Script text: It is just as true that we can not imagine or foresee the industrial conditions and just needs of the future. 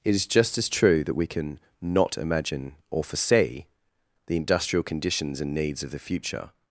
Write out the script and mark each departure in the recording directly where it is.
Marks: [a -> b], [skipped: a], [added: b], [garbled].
It is just as true that we can not imagine or foresee the industrial conditions and [skipped: just] needs of the future.